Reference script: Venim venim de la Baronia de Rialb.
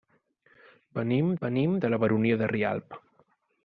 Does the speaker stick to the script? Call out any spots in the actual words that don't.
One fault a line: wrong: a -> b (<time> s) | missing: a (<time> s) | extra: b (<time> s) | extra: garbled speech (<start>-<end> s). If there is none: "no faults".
no faults